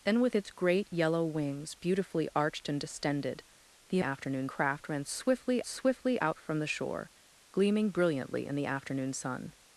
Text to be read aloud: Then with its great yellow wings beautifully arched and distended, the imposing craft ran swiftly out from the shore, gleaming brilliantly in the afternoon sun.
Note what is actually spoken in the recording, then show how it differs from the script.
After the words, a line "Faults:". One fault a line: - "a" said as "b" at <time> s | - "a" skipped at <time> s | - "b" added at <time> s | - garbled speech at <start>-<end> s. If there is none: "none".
Then with its great yellow wings beautifully arched and distended, the afternoon craft ran swiftly swiftly out from the shore, gleaming brilliantly in the afternoon sun.
Faults:
- "imposing" said as "afternoon" at 4.0 s
- "swiftly" added at 5.6 s